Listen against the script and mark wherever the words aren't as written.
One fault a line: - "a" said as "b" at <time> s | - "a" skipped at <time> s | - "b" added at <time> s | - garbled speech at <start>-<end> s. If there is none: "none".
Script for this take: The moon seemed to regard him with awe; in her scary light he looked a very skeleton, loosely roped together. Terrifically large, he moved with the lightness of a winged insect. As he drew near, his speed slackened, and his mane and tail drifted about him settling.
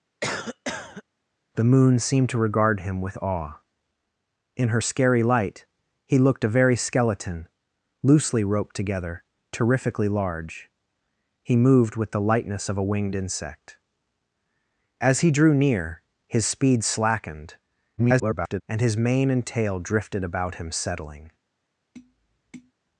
- garbled speech at 18.0-18.6 s